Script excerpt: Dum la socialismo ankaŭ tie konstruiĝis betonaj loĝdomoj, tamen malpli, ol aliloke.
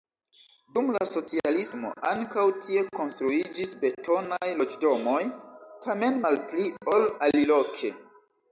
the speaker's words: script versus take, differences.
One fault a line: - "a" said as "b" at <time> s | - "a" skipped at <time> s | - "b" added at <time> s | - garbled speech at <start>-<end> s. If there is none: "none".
none